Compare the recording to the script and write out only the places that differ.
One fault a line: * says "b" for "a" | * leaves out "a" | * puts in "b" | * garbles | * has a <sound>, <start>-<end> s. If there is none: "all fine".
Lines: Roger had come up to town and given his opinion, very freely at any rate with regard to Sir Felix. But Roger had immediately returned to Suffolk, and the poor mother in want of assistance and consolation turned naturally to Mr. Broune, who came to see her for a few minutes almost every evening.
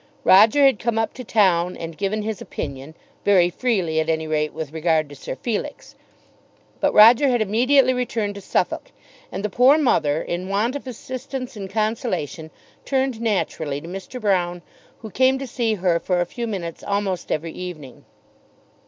all fine